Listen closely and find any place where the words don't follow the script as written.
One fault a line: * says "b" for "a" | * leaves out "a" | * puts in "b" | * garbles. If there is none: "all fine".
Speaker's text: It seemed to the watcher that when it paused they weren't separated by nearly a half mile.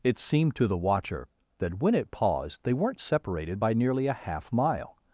all fine